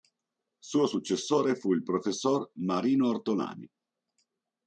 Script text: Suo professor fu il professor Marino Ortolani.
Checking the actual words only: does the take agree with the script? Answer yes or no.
no